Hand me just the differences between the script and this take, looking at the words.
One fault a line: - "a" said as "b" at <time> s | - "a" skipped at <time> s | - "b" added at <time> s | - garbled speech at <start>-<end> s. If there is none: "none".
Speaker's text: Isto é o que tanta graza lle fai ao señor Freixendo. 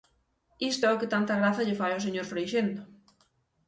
none